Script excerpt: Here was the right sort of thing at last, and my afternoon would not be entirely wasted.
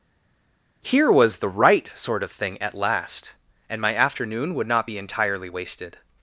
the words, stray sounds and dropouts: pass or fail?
pass